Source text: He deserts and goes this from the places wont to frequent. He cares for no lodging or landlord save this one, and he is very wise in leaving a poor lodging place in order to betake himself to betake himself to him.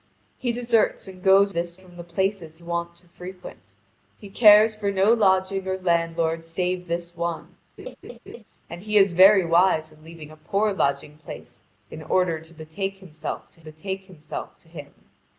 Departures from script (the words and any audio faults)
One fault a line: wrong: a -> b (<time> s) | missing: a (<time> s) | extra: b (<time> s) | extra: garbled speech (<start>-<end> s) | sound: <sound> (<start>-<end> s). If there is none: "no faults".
sound: laugh (7.8-8.4 s)